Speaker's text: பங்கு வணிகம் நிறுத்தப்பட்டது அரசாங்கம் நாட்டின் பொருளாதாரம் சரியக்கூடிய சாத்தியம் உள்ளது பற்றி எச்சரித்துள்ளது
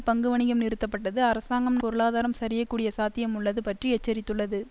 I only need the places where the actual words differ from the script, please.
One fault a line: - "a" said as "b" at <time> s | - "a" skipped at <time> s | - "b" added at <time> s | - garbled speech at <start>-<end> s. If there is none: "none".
- "நாட்டின்" skipped at 1.8 s